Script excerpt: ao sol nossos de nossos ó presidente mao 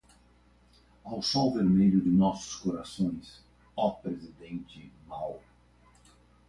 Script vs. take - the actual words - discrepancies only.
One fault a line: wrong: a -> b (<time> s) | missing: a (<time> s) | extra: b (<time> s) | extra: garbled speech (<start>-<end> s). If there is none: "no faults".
wrong: nossos -> vermelho (1.5 s)
extra: corações (2.5 s)